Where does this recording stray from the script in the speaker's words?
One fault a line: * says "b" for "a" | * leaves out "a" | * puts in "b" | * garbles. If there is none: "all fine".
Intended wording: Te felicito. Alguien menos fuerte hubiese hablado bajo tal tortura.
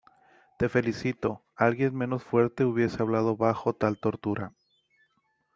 all fine